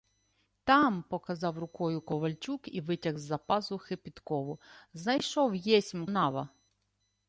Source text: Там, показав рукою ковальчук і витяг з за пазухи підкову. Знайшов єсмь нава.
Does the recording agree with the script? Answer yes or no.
yes